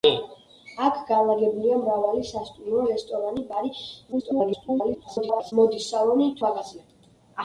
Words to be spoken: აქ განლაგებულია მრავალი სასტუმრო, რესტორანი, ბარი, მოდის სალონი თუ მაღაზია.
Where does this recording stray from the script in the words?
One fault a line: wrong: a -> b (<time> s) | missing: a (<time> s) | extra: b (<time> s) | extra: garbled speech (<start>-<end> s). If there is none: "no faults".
extra: garbled speech (4.1-5.5 s)
missing: თუ (6.3 s)